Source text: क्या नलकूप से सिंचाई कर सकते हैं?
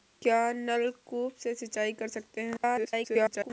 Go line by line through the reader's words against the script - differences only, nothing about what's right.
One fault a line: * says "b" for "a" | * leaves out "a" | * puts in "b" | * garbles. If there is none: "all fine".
* garbles